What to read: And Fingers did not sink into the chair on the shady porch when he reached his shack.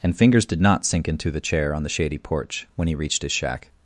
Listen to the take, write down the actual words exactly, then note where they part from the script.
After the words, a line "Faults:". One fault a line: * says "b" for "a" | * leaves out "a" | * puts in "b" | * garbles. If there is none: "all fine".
And Fingers did not sink into the chair on the shady porch when he reached his shack.
Faults:
all fine